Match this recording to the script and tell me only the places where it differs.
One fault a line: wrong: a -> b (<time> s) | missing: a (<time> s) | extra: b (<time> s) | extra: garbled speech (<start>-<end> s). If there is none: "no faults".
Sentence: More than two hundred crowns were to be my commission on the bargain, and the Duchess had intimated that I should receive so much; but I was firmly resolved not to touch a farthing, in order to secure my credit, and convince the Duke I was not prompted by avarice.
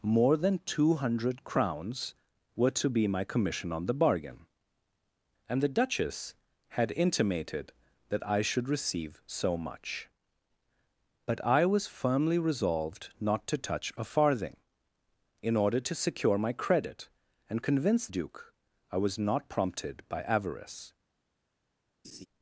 missing: the (18.1 s)